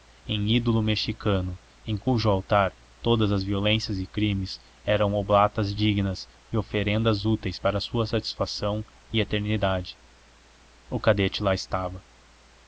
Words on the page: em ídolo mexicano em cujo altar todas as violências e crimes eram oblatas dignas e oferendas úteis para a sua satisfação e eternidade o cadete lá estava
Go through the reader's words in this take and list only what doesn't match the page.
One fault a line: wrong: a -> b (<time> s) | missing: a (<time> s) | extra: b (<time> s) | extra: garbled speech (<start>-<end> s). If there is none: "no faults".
no faults